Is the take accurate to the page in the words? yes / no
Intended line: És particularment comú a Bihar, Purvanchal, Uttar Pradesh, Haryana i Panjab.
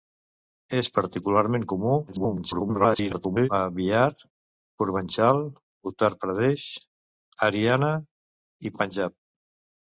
no